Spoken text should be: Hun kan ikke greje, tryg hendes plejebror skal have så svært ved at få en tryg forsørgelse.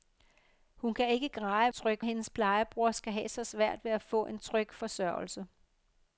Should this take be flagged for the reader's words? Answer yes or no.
no